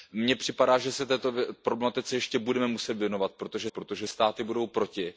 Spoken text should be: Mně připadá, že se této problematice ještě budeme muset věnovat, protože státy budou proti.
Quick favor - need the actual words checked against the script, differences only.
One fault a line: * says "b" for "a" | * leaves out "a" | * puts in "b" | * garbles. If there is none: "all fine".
* puts in "protože"